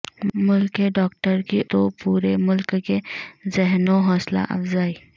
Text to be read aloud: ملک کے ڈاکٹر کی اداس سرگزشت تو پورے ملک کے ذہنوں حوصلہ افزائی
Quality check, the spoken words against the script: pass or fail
fail